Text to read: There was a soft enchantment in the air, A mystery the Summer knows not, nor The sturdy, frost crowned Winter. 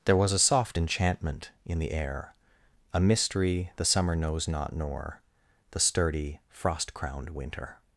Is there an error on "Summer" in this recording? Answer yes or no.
no